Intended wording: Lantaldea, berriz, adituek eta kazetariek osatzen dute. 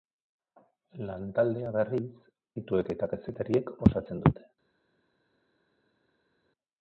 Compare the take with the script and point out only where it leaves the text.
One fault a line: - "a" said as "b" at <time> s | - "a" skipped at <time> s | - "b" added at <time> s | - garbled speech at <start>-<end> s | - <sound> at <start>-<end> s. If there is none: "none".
none